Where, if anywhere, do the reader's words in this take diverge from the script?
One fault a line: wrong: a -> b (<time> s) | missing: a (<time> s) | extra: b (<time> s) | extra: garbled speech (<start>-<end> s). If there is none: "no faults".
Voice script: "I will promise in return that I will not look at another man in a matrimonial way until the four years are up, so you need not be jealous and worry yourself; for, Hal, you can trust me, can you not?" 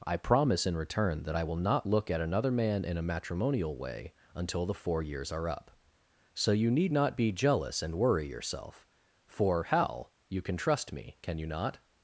missing: will (0.2 s)